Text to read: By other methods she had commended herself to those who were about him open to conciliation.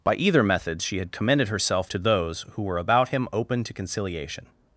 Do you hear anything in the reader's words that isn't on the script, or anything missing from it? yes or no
yes